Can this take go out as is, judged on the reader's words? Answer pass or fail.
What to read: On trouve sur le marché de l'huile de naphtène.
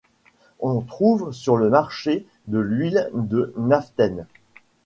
pass